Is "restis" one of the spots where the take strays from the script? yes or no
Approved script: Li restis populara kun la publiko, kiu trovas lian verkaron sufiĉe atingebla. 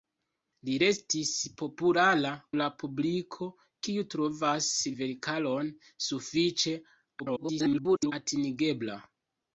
no